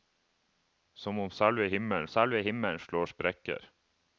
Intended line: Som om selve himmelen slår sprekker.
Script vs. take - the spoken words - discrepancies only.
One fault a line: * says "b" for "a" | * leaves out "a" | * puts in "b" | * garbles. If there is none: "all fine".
* puts in "selve himmelen"